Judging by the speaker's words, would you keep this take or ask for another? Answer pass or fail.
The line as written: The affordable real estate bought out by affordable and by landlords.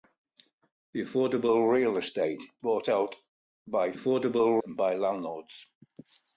pass